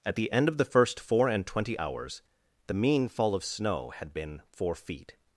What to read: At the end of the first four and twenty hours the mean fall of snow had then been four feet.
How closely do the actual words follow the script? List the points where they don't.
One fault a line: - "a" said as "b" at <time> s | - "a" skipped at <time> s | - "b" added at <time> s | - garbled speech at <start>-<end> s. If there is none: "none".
- "then" skipped at 4.1 s